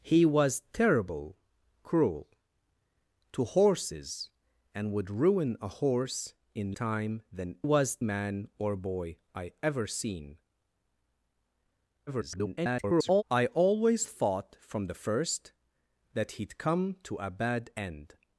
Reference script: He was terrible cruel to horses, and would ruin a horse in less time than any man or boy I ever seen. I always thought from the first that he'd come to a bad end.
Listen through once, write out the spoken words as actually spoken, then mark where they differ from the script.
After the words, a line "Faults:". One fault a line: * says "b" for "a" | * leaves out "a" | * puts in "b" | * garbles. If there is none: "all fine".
He was terrible cruel to horses, and would ruin a horse in time than was man or boy I ever seen. [garbled] I always thought from the first that he'd come to a bad end.
Faults:
* leaves out "less"
* says "was" for "any"
* garbles